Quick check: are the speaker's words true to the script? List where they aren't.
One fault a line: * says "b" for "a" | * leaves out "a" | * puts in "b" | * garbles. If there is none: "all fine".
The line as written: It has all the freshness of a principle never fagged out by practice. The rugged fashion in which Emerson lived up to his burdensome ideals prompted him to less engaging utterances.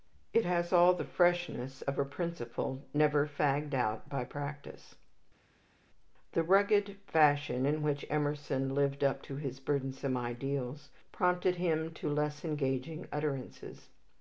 all fine